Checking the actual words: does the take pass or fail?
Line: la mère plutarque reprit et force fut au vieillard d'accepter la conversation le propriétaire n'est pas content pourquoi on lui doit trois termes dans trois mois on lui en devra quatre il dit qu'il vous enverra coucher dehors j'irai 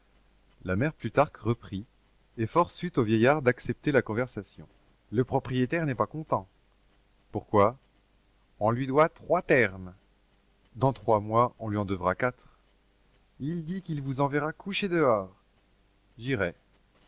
pass